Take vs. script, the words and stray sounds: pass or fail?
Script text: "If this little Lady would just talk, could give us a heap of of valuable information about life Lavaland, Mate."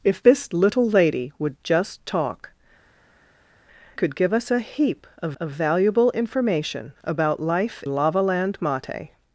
pass